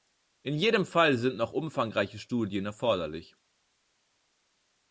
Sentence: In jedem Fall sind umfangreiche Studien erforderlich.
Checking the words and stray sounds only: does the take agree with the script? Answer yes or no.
no